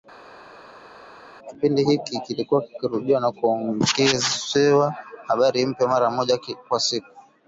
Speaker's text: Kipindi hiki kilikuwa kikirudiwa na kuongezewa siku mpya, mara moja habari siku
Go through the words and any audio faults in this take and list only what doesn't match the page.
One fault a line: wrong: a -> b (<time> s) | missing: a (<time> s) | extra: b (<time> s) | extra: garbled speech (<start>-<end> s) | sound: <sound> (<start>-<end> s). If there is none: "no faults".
wrong: siku -> habari (5.3 s)
wrong: habari -> kwa (6.7 s)